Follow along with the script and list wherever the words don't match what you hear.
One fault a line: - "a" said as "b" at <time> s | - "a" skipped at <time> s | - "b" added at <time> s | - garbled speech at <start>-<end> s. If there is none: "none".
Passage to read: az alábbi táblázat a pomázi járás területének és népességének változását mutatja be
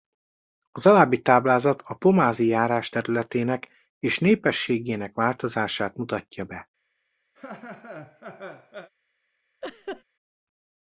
none